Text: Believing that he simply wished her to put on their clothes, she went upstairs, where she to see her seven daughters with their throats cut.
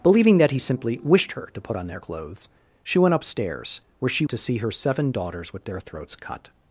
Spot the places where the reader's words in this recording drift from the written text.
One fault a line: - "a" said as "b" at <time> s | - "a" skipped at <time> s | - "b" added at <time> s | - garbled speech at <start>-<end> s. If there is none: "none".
none